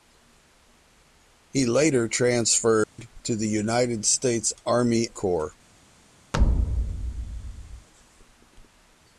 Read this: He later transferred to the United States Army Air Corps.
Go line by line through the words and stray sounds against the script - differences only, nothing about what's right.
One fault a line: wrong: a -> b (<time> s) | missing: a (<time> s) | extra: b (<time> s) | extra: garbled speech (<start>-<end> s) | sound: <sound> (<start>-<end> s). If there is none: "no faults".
sound: dropout (2.8-3.0 s)
missing: Air (5.1 s)
sound: thud (6.3-7.9 s)